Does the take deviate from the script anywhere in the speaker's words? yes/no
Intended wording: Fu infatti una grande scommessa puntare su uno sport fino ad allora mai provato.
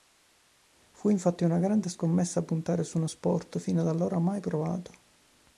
no